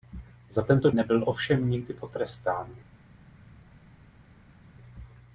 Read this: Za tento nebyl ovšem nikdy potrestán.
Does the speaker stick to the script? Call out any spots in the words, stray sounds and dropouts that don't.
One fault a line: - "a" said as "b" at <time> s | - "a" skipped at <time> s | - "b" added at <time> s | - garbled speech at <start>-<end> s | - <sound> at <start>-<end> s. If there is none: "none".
none